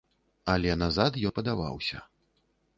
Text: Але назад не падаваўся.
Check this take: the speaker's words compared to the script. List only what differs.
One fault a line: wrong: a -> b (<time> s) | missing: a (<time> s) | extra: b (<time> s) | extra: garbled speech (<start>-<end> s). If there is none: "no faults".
no faults